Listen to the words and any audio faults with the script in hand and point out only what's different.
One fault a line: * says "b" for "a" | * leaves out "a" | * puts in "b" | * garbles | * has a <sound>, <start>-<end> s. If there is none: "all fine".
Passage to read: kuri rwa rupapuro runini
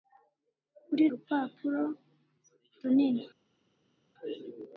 * leaves out "rwa"